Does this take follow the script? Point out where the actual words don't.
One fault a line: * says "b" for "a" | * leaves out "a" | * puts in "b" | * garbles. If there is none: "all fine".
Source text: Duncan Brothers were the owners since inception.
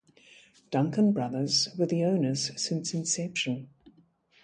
all fine